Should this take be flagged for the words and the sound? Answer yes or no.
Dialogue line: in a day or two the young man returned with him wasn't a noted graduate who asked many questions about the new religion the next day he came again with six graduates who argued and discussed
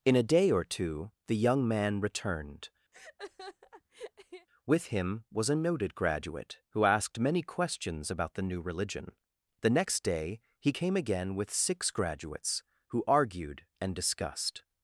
yes